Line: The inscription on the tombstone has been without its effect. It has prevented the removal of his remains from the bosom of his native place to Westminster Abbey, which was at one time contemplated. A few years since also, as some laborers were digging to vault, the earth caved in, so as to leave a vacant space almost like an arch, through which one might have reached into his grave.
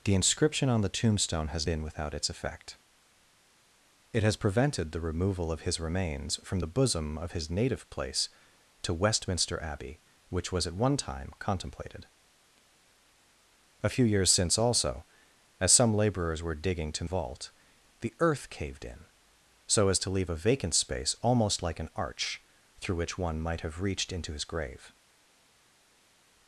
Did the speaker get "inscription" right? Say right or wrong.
right